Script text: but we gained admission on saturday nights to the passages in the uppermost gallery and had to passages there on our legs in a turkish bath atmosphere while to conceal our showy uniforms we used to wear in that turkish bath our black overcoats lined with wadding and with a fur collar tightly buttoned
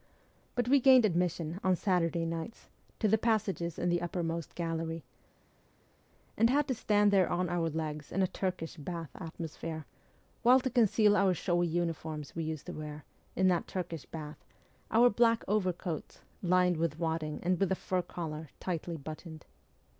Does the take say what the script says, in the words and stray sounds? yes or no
no